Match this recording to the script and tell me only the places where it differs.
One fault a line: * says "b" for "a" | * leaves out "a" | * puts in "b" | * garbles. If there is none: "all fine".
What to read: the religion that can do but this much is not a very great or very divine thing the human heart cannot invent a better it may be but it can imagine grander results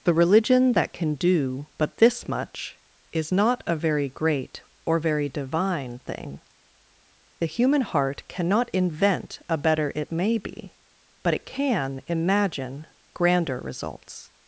all fine